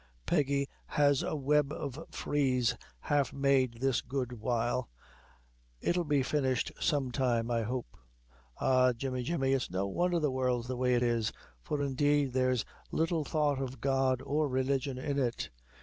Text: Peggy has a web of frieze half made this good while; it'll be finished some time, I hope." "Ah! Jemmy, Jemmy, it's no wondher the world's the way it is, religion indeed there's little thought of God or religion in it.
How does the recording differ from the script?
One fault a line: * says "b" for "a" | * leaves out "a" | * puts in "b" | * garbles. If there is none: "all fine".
* says "for" for "religion"